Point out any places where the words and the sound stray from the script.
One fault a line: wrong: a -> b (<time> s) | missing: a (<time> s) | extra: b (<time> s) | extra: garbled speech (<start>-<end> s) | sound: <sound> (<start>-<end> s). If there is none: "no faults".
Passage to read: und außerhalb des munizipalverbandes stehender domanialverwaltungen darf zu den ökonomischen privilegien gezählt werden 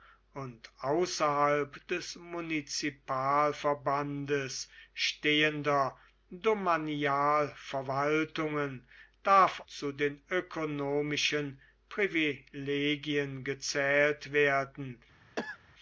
sound: cough (15.4-15.6 s)